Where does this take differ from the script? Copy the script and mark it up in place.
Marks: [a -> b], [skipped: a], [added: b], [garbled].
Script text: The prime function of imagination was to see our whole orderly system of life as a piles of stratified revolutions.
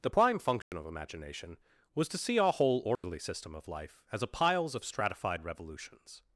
The prime function of imagination was to see our whole orderly system of life as a piles of stratified revolutions.